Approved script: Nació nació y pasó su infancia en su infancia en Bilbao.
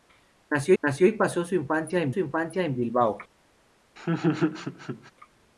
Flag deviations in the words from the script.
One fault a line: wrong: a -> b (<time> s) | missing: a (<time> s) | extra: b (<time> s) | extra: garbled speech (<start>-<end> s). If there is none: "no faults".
no faults